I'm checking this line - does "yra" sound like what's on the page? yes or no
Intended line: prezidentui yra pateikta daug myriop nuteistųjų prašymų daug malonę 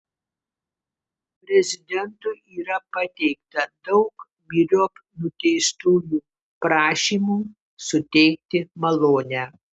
yes